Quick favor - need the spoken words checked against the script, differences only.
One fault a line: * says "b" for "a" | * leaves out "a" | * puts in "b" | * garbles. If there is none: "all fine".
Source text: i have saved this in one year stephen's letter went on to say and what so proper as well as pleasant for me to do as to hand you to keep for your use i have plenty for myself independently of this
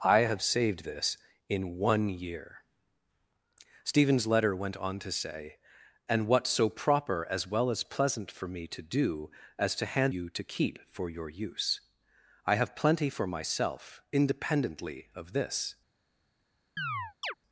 all fine